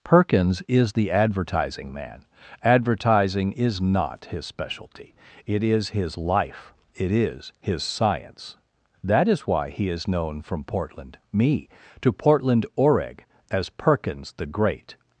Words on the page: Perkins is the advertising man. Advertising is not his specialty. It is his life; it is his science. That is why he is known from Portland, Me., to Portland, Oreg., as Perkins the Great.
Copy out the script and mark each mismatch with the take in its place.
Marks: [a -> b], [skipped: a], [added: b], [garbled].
Perkins is the advertising man. Advertising is not his specialty. It is his life; it is his science. That is why he is known from Portland, Me., to Portland, Oreg., as Perkins the Great.